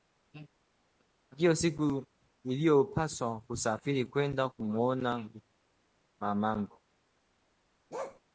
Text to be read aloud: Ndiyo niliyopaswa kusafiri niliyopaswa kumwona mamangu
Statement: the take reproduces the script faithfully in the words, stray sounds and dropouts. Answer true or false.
false